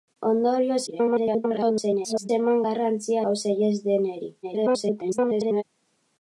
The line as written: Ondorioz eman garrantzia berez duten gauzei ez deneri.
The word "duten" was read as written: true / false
false